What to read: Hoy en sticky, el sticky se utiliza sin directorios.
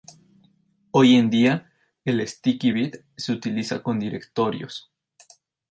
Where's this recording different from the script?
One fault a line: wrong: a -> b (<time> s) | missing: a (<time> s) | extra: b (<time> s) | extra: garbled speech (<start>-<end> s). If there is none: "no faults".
wrong: sticky -> día (1.3 s)
extra: bit (2.7 s)
wrong: sin -> con (3.8 s)